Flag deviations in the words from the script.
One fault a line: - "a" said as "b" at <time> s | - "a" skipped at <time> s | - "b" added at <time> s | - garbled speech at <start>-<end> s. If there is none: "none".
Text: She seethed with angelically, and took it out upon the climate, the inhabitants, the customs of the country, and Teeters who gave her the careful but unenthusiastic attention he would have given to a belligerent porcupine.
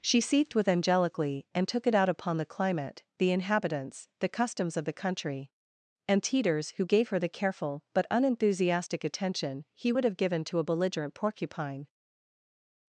none